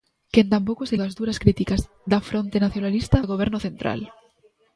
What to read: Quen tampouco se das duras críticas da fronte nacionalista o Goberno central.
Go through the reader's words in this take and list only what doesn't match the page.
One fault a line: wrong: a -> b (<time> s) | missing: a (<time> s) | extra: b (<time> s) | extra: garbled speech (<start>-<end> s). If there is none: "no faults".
no faults